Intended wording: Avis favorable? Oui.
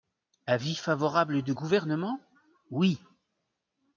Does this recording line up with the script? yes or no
no